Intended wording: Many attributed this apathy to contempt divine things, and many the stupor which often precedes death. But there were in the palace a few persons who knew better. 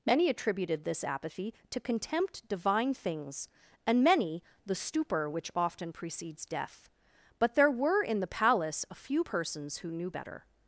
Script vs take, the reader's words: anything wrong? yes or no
no